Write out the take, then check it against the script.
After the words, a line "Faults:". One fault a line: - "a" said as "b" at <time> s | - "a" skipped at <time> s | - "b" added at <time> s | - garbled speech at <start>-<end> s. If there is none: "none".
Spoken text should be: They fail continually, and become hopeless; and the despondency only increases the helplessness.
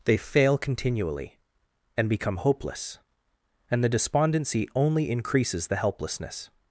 They fail continually, and become hopeless; and the despondency only increases the helplessness.
Faults:
none